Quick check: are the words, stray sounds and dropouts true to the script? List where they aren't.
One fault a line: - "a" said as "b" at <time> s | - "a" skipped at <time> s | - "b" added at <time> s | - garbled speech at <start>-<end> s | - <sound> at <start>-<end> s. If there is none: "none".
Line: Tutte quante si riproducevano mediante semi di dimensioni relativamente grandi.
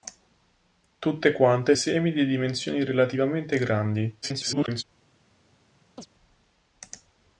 - "si riproducevano mediante" skipped at 1.8 s
- garbled speech at 4.2-4.8 s
- chirp at 6.0-6.1 s